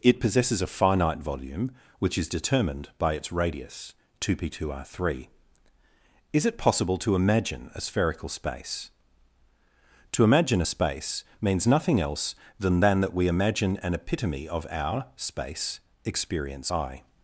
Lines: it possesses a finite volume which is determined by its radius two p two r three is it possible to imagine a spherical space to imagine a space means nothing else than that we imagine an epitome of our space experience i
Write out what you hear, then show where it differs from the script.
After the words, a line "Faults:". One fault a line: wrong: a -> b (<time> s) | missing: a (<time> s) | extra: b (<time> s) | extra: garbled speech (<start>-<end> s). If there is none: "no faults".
it possesses a finite volume which is determined by its radius two p two r three is it possible to imagine a spherical space to imagine a space means nothing else than than that we imagine an epitome of our space experience i
Faults:
extra: than (12.8 s)